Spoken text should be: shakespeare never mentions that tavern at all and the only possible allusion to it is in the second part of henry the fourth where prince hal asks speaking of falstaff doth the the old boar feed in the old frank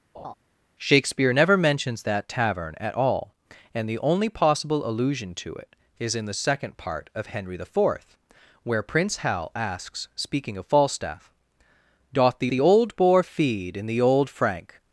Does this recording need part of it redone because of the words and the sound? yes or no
yes